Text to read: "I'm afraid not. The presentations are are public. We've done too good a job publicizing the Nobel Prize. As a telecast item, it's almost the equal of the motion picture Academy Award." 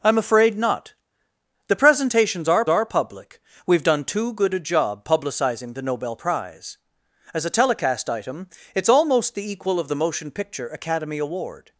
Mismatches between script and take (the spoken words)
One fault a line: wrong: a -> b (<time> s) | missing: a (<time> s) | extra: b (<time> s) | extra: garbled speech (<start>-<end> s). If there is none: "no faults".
no faults